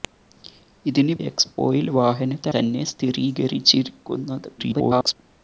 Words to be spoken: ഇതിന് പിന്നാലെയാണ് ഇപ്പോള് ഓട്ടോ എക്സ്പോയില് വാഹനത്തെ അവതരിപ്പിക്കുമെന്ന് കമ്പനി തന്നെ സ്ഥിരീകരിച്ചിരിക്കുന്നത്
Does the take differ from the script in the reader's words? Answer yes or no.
yes